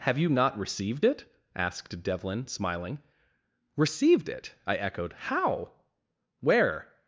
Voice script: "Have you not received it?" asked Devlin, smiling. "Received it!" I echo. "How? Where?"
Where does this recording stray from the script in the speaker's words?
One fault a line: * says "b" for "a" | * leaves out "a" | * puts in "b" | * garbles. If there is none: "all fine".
* says "echoed" for "echo"